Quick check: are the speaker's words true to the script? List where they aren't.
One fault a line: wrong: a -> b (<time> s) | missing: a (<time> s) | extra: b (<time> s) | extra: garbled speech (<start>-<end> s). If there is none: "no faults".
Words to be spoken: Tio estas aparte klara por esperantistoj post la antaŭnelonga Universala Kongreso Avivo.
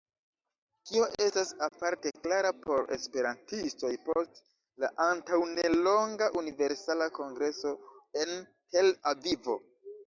extra: en Tel (8.2 s)